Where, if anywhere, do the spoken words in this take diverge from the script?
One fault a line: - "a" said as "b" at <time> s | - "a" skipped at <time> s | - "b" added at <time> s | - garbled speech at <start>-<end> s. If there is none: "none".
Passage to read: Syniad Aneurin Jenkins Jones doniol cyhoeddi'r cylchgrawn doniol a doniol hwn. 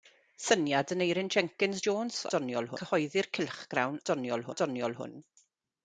none